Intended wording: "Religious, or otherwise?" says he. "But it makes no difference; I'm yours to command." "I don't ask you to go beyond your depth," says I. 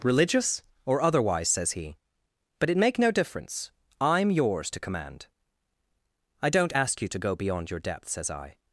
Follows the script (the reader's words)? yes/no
no